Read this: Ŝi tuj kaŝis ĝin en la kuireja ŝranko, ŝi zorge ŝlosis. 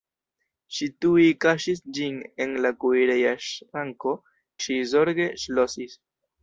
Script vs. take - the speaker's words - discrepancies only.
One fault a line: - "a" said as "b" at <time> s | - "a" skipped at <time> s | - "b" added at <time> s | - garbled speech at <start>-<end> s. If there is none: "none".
none